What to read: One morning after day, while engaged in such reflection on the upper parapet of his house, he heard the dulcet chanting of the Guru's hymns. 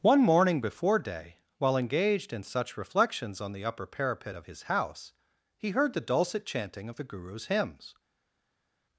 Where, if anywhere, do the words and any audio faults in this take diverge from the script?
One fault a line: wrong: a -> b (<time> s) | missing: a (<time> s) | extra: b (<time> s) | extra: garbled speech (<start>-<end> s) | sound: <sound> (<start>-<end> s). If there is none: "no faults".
wrong: after -> before (0.6 s)
wrong: reflection -> reflections (2.8 s)